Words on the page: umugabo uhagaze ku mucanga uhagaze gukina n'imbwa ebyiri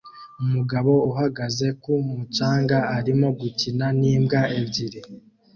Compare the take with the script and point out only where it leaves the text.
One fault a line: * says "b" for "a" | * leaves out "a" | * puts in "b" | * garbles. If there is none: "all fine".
* says "arimo" for "uhagaze"